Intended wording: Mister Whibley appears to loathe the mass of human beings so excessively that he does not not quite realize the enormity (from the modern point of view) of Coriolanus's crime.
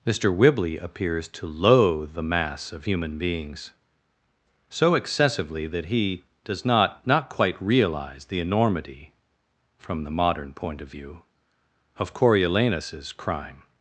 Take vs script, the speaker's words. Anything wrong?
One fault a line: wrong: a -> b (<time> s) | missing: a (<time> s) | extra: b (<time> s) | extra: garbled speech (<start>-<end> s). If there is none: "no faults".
no faults